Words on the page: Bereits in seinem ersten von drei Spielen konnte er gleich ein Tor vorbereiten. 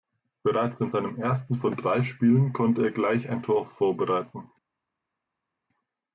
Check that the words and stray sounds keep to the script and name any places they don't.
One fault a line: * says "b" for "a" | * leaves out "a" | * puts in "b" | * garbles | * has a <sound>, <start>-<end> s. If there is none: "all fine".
all fine